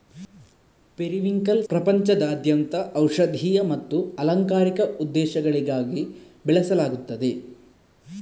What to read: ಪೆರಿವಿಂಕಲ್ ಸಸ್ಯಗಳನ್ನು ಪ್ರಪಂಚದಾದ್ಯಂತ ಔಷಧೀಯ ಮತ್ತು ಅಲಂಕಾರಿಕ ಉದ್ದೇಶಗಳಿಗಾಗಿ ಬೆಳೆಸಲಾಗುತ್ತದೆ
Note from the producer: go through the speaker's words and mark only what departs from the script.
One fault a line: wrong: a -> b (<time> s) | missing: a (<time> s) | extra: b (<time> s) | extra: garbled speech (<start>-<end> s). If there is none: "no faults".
missing: ಸಸ್ಯಗಳನ್ನು (1.6 s)